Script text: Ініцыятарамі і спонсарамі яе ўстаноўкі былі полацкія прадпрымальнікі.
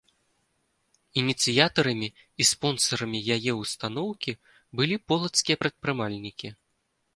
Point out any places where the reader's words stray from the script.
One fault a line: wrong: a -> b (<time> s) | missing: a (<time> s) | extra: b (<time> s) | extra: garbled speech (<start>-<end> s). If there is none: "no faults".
no faults